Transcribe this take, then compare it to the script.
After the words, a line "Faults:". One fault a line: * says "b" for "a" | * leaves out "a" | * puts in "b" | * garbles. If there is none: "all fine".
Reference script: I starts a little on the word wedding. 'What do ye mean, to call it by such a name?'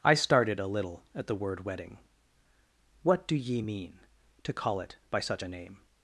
I started a little at the word wedding. 'What do ye mean, to call it by such a name?'
Faults:
* says "started" for "starts"
* says "at" for "on"